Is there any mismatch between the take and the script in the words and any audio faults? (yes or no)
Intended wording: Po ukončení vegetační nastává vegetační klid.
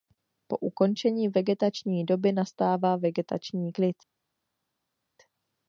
yes